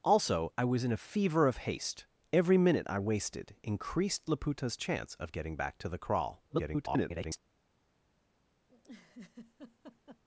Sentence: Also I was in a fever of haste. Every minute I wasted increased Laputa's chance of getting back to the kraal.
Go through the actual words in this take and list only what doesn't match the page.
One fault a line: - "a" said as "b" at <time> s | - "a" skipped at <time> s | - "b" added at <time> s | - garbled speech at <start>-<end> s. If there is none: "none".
- garbled speech at 6.5-7.4 s